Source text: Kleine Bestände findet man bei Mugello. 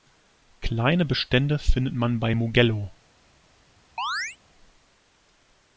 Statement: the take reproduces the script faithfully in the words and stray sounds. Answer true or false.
false